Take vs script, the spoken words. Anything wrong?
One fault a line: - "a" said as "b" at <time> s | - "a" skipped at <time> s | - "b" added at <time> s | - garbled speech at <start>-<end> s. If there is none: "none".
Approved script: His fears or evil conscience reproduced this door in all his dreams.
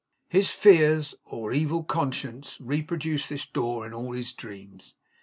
none